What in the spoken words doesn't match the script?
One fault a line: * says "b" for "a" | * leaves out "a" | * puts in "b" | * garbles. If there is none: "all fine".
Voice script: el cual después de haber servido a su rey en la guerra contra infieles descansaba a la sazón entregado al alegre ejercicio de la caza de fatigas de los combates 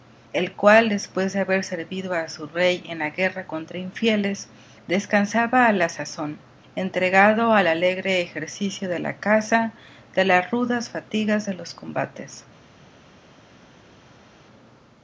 * puts in "las rudas"